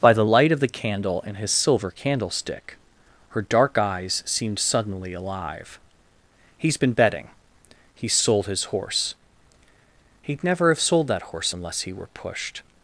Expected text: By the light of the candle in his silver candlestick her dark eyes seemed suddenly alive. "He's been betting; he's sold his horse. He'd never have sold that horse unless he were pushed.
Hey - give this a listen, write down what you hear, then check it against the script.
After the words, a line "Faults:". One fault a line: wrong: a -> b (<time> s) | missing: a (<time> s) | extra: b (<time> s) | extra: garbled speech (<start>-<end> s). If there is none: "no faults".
By the light of the candle in his silver candlestick her dark eyes seemed suddenly alive. "He's been betting; he's sold his horse. He'd never have sold that horse unless he were pushed.
Faults:
no faults